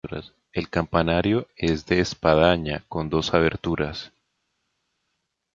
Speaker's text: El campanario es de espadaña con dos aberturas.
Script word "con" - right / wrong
right